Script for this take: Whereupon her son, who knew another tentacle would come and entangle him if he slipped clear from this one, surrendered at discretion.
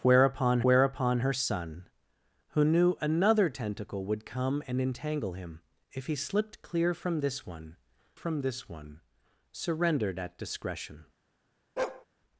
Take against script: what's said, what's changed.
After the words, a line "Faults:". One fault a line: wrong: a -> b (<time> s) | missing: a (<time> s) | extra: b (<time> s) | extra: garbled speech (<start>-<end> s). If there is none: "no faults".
Whereupon whereupon her son, who knew another tentacle would come and entangle him if he slipped clear from this one from this one, surrendered at discretion.
Faults:
extra: whereupon (0.6 s)
extra: from this one (8.1 s)